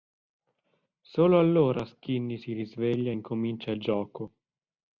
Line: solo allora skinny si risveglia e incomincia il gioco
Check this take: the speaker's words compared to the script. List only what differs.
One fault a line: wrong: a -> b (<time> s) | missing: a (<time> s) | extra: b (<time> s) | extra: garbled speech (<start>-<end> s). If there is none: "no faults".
no faults